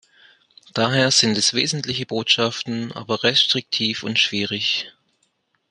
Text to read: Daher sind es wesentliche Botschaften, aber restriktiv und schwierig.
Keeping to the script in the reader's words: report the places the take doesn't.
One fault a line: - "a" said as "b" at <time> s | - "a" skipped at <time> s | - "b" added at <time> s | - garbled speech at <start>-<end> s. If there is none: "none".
none